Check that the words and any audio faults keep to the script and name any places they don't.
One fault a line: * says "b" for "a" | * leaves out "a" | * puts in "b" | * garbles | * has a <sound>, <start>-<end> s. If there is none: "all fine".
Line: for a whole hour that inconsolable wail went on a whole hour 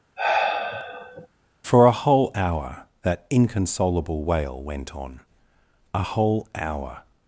* has a sigh, 0.2-1.3 s